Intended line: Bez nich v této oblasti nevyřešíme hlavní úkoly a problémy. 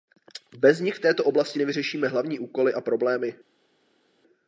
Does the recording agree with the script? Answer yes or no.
yes